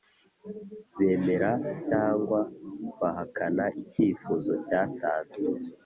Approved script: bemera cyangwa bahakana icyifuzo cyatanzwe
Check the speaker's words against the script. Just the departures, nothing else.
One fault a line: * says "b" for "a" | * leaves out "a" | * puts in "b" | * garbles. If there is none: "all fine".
all fine